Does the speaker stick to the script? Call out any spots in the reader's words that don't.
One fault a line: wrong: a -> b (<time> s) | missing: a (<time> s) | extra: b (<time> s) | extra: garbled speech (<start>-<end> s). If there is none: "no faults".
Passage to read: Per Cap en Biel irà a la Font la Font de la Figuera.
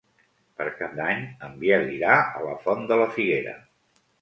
extra: d'Any (1.0 s)
missing: la Font (2.9 s)